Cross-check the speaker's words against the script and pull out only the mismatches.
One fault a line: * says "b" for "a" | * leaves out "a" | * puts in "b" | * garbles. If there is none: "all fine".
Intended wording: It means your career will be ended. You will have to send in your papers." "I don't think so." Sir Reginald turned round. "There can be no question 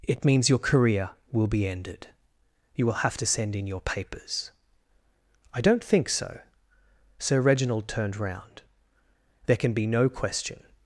all fine